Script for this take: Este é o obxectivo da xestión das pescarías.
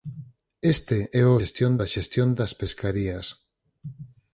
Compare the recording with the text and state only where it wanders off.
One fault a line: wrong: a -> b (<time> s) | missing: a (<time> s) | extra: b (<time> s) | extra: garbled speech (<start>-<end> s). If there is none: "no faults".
wrong: obxectivo -> xestión (1.4 s)